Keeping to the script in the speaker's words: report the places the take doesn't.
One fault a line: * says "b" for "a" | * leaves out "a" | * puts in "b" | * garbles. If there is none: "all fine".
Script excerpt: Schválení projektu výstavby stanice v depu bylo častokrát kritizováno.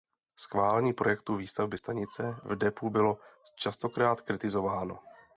all fine